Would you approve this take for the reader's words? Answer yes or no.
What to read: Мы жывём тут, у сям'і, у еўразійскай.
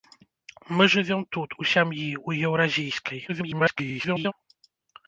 no